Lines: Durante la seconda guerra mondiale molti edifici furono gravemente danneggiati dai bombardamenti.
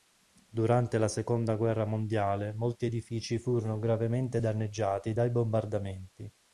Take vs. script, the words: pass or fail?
pass